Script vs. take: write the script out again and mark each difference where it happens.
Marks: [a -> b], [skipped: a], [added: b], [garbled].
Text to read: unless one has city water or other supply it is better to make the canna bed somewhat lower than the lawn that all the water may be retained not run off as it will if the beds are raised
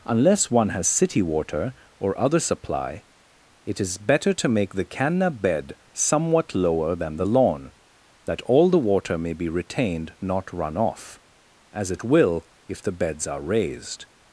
unless one has city water or other supply it is better to make the canna bed somewhat lower than the lawn that all the water may be retained not run off as it will if the beds are raised